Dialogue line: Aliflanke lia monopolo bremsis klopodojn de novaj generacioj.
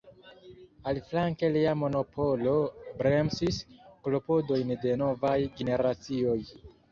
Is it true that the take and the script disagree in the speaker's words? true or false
false